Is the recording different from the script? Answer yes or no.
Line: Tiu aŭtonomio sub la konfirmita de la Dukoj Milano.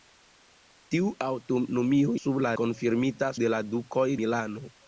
no